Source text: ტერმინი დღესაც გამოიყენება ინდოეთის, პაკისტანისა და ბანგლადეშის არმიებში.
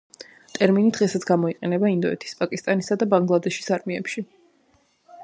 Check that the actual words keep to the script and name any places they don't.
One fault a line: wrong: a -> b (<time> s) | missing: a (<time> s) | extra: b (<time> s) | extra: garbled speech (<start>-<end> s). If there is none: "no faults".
no faults